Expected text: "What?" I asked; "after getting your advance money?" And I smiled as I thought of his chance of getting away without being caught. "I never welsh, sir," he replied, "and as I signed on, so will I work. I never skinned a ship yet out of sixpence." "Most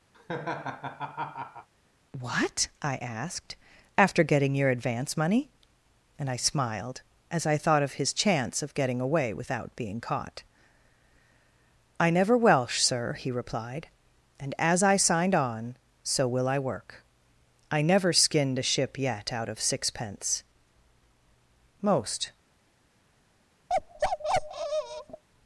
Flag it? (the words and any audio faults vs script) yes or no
yes